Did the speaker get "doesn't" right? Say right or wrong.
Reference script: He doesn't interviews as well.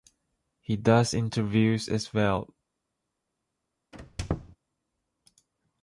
wrong